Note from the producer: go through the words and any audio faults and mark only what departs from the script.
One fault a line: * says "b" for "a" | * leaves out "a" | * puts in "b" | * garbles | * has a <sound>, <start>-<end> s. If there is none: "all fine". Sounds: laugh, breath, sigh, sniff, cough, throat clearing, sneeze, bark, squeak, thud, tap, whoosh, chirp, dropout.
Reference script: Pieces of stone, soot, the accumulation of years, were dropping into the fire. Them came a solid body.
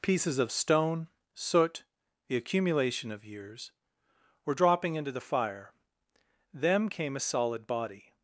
all fine